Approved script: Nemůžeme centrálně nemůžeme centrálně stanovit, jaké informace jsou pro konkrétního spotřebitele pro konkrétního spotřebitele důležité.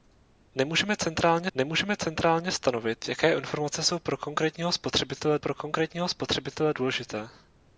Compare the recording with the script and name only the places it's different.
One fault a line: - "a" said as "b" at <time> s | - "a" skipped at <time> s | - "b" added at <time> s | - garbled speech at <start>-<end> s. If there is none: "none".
none